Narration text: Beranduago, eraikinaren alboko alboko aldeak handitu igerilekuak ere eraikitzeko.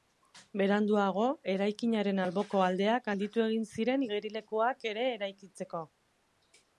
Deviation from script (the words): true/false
true